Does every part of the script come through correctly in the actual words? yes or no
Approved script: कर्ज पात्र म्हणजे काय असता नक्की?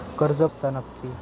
no